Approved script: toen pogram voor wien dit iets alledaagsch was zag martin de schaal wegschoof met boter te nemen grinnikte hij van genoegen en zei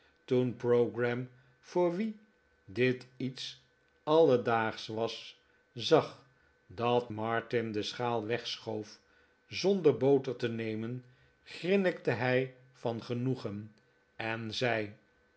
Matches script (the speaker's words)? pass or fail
fail